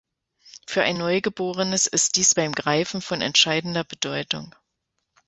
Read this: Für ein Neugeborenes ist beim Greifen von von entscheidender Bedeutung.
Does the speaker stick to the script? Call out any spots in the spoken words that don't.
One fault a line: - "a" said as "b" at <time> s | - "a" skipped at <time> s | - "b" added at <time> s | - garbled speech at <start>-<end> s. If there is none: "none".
- "dies" added at 2.1 s
- "von" skipped at 3.2 s